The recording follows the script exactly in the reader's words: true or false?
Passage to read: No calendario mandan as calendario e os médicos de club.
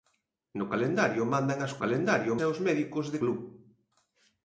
true